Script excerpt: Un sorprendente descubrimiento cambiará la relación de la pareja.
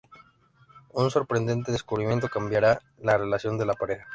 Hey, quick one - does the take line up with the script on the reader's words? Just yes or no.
yes